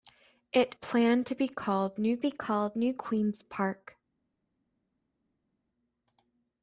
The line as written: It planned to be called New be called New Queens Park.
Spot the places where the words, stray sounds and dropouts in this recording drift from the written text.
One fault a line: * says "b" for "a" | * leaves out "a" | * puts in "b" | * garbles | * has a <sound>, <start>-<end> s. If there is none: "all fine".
all fine